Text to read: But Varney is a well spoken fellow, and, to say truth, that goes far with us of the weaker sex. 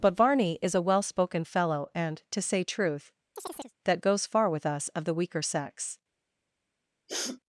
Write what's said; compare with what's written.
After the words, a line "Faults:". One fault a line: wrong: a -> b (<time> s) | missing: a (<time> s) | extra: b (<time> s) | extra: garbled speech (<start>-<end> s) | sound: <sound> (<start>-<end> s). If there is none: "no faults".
But Varney is a well spoken fellow, and, to say truth, that goes far with us of the weaker sex.
Faults:
sound: chirp (3.4-3.7 s)
sound: sniff (7.1-7.4 s)